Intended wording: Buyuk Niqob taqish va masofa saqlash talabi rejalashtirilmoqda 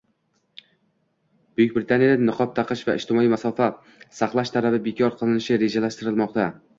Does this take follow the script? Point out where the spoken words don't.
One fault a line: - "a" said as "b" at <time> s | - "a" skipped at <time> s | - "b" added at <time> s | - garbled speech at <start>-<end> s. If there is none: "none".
- "Britaniyada" added at 1.8 s
- "ijtimoiy" added at 3.0 s
- "bekor qilinishi" added at 4.9 s